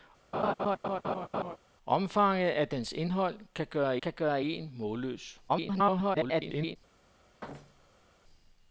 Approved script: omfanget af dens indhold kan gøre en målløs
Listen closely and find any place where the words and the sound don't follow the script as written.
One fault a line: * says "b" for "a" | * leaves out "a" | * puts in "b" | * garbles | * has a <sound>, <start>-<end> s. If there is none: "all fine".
* has a laugh, 0.3-1.6 s
* puts in "kan gøre"
* garbles
* has a thud, 7.4-8.1 s